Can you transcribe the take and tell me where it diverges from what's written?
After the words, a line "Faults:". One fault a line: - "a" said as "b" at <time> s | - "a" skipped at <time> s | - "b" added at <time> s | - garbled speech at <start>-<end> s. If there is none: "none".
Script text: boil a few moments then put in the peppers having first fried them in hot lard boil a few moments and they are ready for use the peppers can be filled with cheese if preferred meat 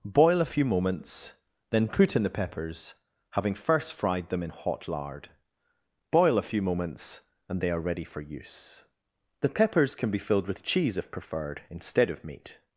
boil a few moments then put in the peppers having first fried them in hot lard boil a few moments and they are ready for use the peppers can be filled with cheese if preferred instead of meat
Faults:
- "instead of" added at 11.7 s